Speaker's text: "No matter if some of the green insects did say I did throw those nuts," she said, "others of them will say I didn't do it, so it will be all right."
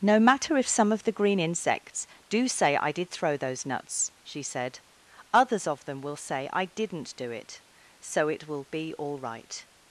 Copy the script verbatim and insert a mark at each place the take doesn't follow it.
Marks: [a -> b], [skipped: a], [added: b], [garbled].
"No matter if some of the green insects [did -> do] say I did throw those nuts," she said, "others of them will say I didn't do it, so it will be all right."